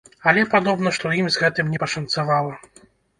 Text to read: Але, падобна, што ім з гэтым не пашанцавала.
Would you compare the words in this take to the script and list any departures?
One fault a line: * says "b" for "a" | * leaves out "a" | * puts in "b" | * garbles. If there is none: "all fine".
all fine